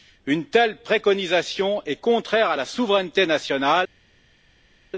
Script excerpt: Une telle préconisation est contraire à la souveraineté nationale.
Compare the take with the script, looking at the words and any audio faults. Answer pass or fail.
pass